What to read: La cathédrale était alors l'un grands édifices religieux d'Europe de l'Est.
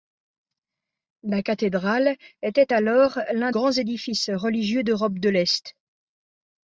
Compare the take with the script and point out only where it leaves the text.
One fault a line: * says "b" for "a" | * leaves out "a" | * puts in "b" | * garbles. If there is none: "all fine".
all fine